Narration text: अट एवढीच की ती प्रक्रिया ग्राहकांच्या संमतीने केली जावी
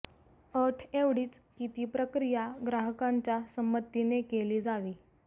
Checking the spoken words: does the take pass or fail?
pass